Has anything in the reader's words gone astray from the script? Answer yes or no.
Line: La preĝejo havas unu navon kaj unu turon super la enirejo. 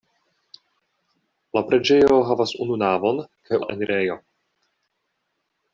yes